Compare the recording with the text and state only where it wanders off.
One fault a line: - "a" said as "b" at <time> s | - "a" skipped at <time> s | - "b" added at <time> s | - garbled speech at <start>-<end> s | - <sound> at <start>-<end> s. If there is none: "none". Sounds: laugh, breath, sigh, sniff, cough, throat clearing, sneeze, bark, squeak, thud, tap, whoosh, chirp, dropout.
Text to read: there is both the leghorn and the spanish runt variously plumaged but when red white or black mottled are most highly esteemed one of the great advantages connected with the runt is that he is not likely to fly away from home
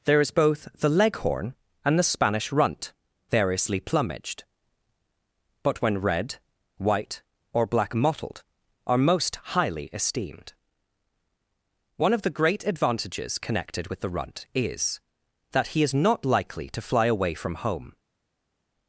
none